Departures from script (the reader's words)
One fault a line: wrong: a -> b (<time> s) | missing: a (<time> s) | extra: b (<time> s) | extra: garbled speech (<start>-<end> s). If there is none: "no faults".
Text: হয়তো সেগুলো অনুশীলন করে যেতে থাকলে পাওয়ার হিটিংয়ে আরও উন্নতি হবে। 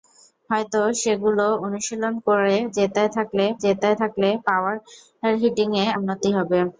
extra: যেতে থাকলে (3.6 s)
missing: আরও (5.8 s)